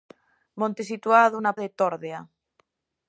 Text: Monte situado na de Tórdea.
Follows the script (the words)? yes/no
yes